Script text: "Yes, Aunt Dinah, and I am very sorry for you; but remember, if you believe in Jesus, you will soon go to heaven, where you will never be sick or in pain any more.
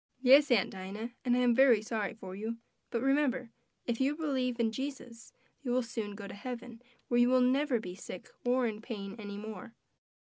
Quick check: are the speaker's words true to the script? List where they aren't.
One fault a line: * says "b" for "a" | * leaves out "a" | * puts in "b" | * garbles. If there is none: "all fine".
all fine